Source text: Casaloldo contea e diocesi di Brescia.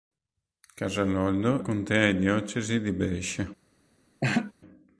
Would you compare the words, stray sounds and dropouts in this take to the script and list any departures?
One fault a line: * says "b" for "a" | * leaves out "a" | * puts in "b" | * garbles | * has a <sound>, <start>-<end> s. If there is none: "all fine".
* has a laugh, 4.2-4.5 s